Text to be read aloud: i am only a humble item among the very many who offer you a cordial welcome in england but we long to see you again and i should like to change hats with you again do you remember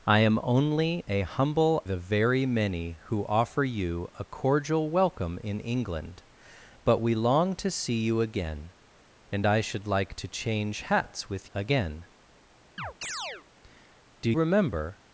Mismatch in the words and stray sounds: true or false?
true